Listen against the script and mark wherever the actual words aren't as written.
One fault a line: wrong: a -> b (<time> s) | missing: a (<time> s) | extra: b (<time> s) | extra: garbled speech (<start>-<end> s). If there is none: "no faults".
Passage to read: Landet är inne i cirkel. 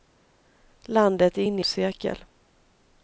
no faults